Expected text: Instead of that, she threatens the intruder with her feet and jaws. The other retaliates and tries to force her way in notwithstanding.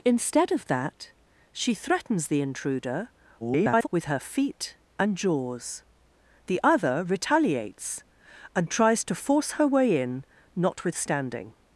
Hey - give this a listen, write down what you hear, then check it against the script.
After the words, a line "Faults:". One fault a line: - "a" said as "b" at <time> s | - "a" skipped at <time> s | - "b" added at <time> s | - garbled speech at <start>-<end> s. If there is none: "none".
Instead of that, she threatens the intruder [garbled] with her feet and jaws. The other retaliates and tries to force her way in notwithstanding.
Faults:
- garbled speech at 3.4-3.9 s